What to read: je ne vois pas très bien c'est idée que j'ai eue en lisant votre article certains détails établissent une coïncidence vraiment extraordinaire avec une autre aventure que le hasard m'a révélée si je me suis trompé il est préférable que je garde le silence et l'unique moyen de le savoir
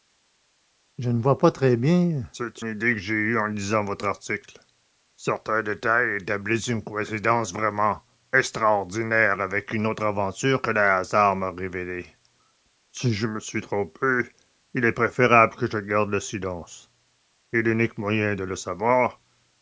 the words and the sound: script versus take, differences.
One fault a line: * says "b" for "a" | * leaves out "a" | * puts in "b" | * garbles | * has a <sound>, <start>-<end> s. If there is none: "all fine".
all fine